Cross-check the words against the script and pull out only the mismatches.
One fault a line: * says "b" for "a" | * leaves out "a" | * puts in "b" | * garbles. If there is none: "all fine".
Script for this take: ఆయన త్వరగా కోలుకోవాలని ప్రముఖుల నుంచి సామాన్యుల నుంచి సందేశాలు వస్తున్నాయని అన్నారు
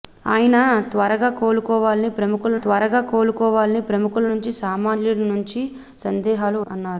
* puts in "త్వరగా కోలుకోవాలని ప్రముఖుల"
* leaves out "వస్తున్నాయని"